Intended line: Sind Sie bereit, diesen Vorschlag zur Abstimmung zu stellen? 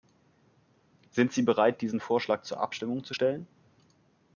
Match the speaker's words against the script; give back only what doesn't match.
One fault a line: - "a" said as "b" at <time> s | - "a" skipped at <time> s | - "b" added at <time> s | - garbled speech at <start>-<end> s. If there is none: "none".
none